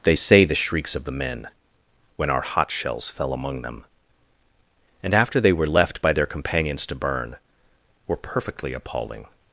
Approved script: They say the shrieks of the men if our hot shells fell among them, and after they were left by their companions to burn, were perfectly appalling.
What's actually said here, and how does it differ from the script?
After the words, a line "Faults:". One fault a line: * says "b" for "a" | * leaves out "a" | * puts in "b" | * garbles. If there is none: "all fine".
They say the shrieks of the men when our hot shells fell among them, and after they were left by their companions to burn, were perfectly appalling.
Faults:
* says "when" for "if"